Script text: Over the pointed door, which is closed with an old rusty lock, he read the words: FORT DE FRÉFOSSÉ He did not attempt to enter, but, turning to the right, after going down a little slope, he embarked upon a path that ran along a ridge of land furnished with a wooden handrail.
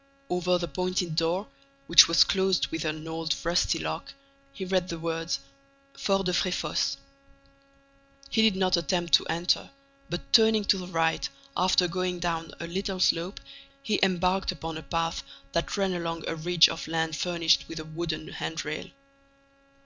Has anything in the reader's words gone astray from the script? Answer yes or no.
yes